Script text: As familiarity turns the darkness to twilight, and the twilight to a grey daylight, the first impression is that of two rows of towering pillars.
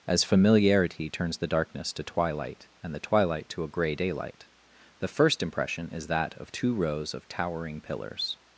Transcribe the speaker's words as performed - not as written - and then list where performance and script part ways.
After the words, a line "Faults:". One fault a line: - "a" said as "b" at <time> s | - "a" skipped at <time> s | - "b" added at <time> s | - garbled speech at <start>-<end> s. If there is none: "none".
As familiarity turns the darkness to twilight, and the twilight to a grey daylight, the first impression is that of two rows of towering pillars.
Faults:
none